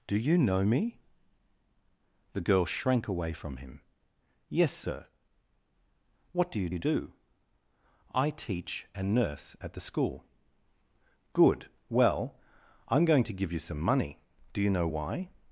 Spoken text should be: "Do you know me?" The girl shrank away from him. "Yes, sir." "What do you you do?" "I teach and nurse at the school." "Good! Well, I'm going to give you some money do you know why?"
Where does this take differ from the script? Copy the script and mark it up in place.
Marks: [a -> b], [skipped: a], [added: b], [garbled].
"Do you know me?" The girl shrank away from him. "Yes, sir." "What do you you do?" "I teach and nurse at the school." "Good! Well, I'm going to give you some money do you know why?"